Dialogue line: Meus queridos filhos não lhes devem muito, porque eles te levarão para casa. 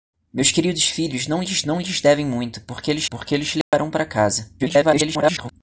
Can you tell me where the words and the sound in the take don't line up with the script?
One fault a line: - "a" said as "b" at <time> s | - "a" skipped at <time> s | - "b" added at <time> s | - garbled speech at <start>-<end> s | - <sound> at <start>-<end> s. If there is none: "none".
- "não lhes" added at 1.6 s
- "porque eles" added at 3.0 s
- dropout at 3.6-3.7 s
- garbled speech at 4.6-5.5 s